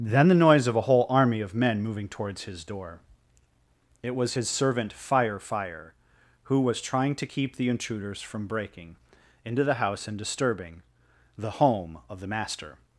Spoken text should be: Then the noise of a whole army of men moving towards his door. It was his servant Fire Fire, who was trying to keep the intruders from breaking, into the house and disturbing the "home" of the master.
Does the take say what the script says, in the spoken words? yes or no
yes